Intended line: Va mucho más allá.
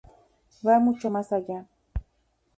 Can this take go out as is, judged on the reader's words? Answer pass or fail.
pass